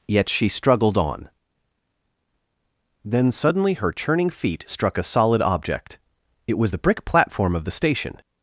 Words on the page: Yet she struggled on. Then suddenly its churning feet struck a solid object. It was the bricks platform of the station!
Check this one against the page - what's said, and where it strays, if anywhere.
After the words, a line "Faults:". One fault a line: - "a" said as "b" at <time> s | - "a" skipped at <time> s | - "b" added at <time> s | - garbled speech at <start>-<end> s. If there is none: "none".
Yet she struggled on. Then suddenly her churning feet struck a solid object. It was the brick platform of the station!
Faults:
- "its" said as "her" at 3.8 s
- "bricks" said as "brick" at 6.8 s